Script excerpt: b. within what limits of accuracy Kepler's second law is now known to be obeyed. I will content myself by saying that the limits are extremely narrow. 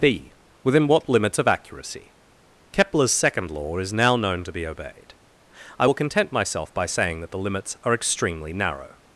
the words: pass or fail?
pass